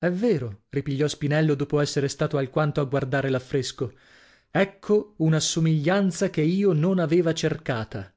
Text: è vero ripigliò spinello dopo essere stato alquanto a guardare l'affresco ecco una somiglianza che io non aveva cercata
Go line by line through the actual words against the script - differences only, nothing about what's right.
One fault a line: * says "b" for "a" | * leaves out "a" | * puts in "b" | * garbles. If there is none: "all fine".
all fine